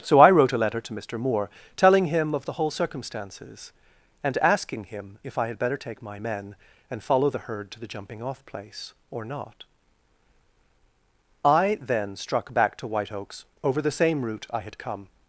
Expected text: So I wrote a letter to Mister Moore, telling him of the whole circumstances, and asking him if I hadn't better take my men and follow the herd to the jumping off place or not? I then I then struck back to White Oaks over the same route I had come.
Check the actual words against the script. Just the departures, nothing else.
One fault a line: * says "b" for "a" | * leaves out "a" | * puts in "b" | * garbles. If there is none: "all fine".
* says "had" for "hadn't"
* leaves out "I then"